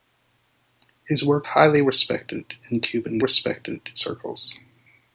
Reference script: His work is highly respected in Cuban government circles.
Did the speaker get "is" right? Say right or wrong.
wrong